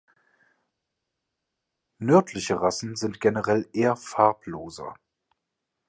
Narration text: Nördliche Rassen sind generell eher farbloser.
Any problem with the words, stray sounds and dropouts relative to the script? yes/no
no